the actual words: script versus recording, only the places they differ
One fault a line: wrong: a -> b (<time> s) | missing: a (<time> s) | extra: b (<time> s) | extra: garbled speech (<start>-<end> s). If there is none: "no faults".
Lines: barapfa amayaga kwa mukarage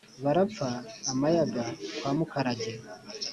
no faults